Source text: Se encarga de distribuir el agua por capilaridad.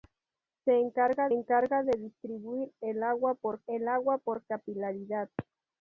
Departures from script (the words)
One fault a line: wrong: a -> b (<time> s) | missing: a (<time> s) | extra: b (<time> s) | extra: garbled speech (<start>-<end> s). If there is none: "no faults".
extra: encarga (1.3 s)
extra: el agua por (3.7 s)